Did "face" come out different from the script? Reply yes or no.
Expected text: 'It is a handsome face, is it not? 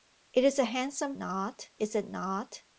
yes